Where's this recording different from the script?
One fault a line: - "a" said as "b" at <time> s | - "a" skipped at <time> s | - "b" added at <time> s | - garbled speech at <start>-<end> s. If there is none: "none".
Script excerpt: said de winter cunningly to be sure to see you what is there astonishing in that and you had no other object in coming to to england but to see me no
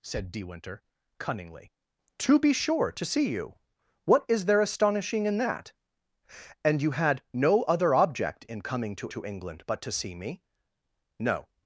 none